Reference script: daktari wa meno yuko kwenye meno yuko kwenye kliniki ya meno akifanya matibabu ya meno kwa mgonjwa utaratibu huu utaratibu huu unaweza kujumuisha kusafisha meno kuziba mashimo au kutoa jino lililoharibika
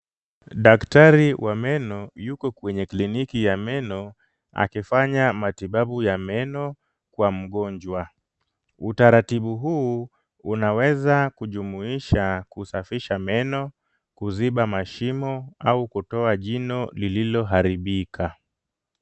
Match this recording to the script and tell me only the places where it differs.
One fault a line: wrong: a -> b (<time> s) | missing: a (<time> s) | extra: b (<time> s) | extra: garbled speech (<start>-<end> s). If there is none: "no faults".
missing: meno yuko kwenye (2.9 s)
missing: utaratibu huu (10.1 s)